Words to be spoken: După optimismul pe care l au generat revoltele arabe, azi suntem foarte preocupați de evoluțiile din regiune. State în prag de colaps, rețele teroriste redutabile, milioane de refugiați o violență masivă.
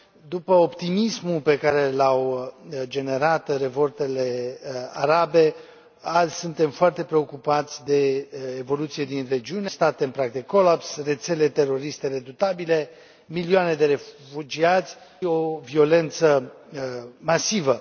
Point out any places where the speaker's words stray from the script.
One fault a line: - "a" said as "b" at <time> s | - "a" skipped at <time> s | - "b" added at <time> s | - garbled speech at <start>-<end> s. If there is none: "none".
none